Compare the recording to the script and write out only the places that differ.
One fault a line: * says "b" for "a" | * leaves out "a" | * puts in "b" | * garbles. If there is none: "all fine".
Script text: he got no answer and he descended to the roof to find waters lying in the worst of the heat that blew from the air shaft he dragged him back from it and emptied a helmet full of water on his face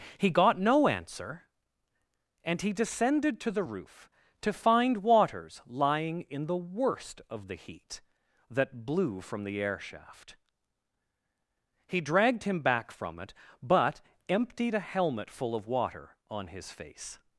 * says "but" for "and"